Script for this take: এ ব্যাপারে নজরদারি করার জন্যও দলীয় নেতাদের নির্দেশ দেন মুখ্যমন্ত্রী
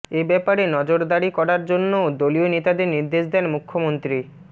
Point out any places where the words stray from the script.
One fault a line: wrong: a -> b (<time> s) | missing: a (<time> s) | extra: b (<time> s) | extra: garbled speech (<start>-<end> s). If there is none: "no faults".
no faults